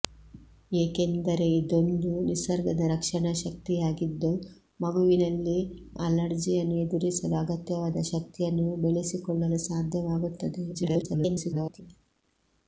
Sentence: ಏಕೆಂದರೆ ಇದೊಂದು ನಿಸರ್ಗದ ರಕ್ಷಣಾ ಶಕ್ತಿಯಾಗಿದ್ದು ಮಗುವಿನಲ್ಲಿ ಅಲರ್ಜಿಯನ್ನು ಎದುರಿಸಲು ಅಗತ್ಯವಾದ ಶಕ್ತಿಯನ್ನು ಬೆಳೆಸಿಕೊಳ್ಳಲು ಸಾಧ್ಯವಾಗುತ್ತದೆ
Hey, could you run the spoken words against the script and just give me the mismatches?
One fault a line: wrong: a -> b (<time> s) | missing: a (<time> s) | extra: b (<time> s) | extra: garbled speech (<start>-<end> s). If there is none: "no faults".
extra: garbled speech (10.7-11.8 s)